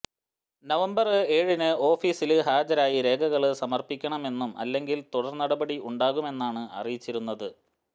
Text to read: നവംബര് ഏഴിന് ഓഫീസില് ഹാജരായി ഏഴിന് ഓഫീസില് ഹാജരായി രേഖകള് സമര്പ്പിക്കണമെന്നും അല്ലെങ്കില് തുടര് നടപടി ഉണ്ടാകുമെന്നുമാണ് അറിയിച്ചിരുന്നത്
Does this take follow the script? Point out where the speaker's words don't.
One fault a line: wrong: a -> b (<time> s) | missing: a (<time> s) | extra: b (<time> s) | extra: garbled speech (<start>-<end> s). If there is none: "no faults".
missing: ഏഴിന് ഓഫീസില് ഹാജരായി (3.0 s)